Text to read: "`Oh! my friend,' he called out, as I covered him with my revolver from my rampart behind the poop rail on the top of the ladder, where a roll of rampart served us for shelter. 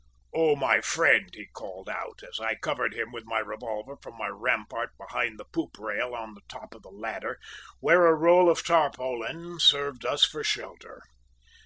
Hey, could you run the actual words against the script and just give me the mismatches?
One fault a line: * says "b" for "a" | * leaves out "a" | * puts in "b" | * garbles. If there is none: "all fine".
* says "tarpaulin" for "rampart"